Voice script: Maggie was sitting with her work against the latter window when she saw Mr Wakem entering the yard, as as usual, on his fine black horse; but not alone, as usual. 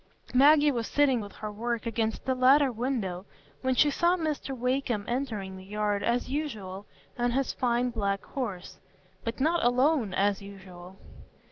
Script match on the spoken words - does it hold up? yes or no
no